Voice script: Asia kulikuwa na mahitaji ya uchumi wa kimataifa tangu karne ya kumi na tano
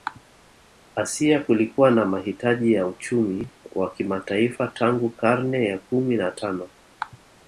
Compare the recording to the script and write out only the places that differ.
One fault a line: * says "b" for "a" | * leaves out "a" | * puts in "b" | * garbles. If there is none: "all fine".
all fine